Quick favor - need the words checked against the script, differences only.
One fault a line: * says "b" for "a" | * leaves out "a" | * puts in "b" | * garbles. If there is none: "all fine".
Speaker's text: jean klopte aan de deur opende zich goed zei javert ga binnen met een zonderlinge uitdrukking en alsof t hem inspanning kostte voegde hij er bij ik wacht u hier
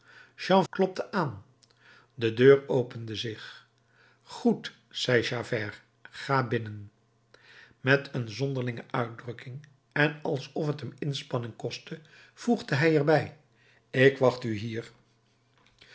all fine